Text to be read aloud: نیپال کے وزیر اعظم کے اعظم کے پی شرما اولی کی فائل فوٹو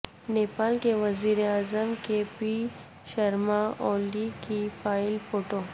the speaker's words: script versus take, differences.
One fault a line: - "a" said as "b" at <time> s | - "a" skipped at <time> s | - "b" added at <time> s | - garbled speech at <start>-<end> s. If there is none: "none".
- "اعظم کے" skipped at 2.2 s